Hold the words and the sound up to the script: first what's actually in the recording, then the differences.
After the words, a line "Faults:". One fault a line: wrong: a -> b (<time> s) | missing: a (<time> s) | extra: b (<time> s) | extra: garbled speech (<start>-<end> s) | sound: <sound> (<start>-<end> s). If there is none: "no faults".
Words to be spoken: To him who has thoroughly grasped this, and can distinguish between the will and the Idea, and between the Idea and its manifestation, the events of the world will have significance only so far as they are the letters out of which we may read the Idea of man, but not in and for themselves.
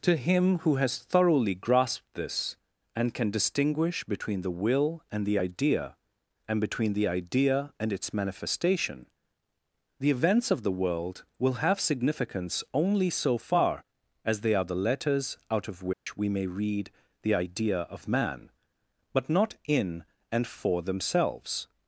To him who has thoroughly grasped this, and can distinguish between the will and the Idea, and between the Idea and its manifestation, the events of the world will have significance only so far as they are the letters out of which we may read the Idea of man, but not in and for themselves.
Faults:
sound: dropout (15.9-16.1 s)